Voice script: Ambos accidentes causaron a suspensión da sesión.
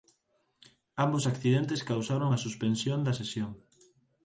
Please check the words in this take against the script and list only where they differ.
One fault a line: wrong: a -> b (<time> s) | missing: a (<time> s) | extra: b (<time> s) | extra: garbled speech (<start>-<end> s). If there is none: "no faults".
no faults